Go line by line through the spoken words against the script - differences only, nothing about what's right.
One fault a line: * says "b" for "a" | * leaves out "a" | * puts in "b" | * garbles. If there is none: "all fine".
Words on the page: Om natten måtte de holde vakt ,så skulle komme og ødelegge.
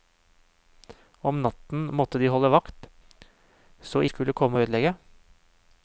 all fine